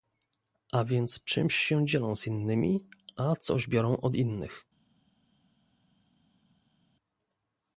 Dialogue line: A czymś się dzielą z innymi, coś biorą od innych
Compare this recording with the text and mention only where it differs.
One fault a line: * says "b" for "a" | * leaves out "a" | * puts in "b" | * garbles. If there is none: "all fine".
* puts in "więc"
* puts in "a"